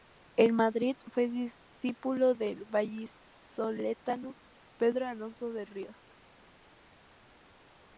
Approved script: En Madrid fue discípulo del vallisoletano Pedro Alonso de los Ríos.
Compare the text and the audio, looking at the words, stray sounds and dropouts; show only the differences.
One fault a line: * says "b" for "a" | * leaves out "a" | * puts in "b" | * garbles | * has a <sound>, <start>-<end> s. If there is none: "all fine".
* leaves out "los"